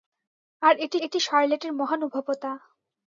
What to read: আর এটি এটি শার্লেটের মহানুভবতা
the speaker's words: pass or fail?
pass